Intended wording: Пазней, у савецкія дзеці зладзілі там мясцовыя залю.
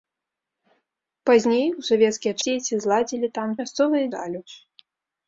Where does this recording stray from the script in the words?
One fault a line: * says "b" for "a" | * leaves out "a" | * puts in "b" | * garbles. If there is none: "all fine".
all fine